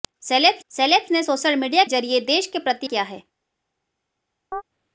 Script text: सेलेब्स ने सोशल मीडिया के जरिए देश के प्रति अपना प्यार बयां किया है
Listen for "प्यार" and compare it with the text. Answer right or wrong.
wrong